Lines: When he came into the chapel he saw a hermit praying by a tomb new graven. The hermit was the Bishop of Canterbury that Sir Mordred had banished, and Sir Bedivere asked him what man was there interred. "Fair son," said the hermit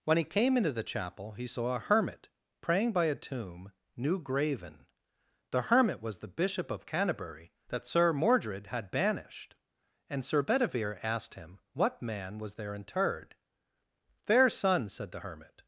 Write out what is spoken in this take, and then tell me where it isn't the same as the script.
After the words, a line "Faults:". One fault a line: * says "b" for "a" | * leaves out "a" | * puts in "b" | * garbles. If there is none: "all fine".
When he came into the chapel he saw a hermit praying by a tomb new graven. The hermit was the Bishop of Canterbury that Sir Mordred had banished, and Sir Bedivere asked him what man was there interred. "Fair son," said the hermit
Faults:
all fine